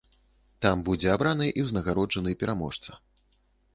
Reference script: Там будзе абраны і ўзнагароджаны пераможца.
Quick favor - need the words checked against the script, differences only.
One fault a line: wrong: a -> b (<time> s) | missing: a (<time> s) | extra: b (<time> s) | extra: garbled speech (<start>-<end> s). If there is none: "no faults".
no faults